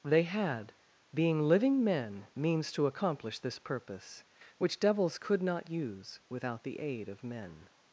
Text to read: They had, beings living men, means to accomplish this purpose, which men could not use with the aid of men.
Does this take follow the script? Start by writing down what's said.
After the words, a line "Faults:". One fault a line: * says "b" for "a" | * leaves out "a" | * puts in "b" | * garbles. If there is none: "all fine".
They had, being living men, means to accomplish this purpose, which devils could not use without the aid of men.
Faults:
* says "being" for "beings"
* says "devils" for "men"
* says "without" for "with"